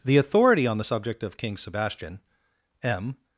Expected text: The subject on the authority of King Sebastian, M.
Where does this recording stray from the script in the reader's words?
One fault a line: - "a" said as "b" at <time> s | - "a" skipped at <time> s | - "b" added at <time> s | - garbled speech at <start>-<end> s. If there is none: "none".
- "subject" said as "authority" at 0.2 s
- "authority" said as "subject" at 0.8 s